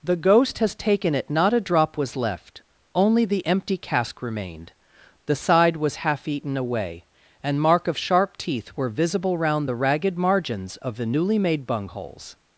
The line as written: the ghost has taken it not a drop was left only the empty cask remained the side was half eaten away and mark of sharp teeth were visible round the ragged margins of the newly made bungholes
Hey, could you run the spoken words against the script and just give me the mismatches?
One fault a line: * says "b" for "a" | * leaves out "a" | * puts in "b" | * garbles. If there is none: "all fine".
all fine